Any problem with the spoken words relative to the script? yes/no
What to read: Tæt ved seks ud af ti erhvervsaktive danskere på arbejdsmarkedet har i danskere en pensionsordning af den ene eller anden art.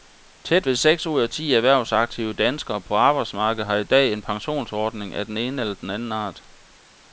yes